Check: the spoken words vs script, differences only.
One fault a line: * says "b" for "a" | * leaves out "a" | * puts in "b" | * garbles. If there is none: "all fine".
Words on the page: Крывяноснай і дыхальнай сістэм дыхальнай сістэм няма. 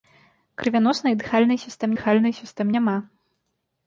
all fine